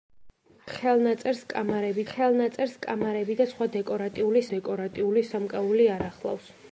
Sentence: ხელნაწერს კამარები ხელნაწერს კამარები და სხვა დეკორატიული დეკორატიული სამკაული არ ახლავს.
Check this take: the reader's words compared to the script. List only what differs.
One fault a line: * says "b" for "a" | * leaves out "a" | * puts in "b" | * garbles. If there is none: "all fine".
all fine